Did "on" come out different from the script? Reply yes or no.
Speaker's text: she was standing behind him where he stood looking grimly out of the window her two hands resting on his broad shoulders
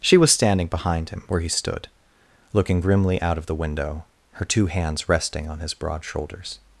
no